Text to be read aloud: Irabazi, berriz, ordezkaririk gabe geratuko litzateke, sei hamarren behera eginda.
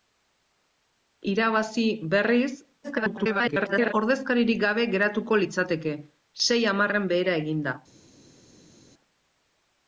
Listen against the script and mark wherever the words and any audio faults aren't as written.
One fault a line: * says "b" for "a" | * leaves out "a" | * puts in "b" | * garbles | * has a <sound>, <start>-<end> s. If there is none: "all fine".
* garbles